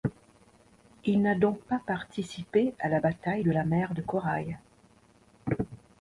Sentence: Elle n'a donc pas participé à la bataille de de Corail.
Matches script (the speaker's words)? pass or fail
fail